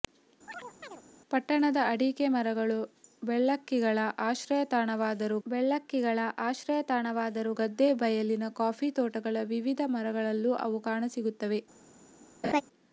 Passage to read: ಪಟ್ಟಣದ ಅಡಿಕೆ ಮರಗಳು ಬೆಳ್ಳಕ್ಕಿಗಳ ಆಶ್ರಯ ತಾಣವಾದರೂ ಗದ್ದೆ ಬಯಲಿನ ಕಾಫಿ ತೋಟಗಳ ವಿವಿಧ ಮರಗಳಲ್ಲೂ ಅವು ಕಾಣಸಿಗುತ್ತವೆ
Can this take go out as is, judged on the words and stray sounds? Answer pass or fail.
fail